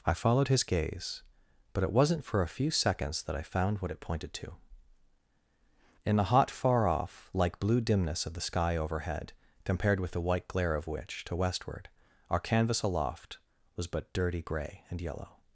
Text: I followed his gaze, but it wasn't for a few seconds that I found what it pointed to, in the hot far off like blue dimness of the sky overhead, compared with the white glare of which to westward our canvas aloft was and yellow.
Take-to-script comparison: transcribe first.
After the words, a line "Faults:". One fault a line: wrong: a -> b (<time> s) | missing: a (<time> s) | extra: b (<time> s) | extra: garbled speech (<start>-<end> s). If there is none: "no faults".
I followed his gaze, but it wasn't for a few seconds that I found what it pointed to, in the hot far off like blue dimness of the sky overhead, compared with the white glare of which to westward our canvas aloft was but dirty gray and yellow.
Faults:
extra: but dirty gray (13.8 s)